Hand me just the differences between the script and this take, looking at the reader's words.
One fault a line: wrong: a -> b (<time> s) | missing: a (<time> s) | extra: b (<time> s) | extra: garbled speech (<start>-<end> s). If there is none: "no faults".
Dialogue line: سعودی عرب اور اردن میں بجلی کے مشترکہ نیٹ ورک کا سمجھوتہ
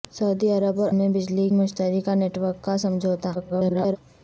missing: اردن (0.9 s)
missing: کے (1.5 s)
extra: garbled speech (3.3-4.0 s)